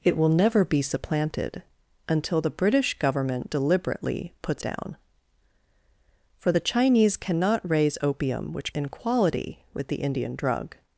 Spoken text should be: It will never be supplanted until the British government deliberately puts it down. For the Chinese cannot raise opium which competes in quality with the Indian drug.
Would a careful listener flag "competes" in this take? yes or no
yes